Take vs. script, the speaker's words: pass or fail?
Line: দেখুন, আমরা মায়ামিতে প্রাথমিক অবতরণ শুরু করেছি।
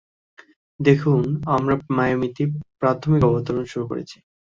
pass